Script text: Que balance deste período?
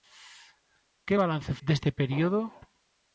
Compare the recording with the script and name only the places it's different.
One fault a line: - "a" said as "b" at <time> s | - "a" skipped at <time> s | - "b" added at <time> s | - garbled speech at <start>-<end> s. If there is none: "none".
none